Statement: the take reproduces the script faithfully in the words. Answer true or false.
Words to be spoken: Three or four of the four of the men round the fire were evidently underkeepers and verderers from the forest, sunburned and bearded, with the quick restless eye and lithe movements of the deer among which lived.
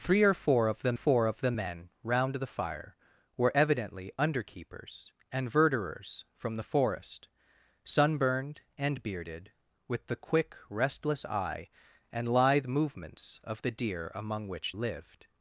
true